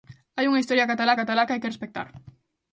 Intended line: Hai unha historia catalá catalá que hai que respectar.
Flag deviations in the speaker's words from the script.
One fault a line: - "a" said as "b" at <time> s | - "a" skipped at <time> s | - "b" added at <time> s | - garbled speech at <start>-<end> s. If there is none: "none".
none